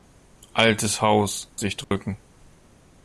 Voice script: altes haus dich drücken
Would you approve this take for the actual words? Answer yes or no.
yes